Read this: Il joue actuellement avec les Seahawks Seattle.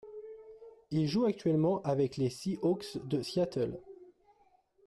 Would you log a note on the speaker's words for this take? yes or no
yes